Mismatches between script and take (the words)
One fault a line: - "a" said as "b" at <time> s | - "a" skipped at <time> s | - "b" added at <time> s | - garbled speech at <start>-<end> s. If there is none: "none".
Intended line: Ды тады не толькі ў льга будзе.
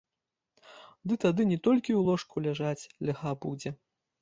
- "ложку ляжаць" added at 2.1 s